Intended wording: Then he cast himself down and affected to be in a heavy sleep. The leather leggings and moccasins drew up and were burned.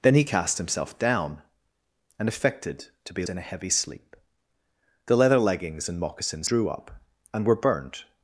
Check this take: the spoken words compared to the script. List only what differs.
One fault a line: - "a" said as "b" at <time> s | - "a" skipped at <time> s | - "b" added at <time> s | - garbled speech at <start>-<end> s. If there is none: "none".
none